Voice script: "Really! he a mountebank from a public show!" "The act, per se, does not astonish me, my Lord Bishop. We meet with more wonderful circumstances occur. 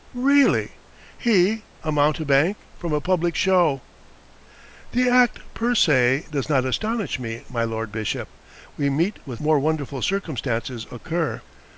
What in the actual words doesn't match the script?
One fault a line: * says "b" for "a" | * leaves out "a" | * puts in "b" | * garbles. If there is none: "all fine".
all fine